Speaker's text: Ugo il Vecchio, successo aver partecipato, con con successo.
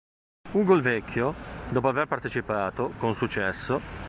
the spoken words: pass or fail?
fail